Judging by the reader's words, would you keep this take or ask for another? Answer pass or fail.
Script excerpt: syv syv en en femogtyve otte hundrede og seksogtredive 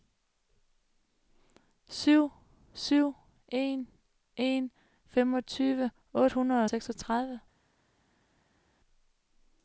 pass